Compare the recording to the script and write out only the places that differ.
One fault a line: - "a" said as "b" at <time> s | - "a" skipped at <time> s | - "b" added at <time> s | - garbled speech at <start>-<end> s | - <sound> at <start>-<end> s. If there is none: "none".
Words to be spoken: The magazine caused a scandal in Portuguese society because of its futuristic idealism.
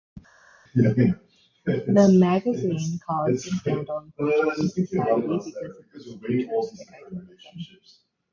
none